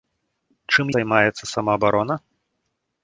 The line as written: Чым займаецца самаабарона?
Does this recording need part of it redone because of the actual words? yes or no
no